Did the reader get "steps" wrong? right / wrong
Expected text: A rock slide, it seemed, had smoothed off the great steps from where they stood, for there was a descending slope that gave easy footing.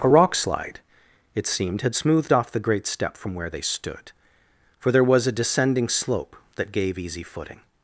wrong